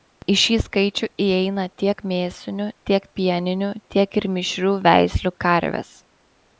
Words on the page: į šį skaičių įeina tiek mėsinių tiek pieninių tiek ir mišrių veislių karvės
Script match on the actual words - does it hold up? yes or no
yes